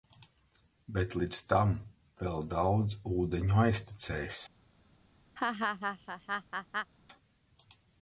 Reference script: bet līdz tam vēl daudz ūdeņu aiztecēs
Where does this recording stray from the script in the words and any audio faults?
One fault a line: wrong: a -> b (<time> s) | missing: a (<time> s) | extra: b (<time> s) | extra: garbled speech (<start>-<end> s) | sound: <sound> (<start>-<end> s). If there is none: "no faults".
sound: laugh (5.4-6.9 s)